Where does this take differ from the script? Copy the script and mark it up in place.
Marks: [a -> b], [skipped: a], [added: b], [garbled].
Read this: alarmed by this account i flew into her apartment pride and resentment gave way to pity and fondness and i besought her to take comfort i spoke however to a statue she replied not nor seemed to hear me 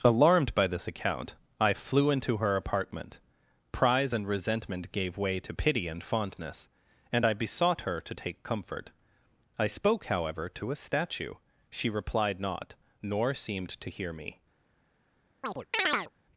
alarmed by this account i flew into her apartment [pride -> prize] and resentment gave way to pity and fondness and i besought her to take comfort i spoke however to a statue she replied not nor seemed to hear me